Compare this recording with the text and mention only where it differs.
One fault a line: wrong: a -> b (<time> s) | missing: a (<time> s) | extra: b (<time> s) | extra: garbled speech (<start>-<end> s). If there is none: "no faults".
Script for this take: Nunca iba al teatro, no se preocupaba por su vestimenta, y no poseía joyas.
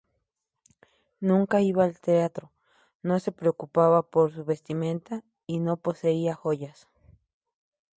no faults